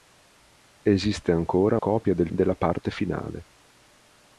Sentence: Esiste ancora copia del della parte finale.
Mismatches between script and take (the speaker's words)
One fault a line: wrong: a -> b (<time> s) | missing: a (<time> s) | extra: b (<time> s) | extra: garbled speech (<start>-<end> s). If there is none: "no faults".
no faults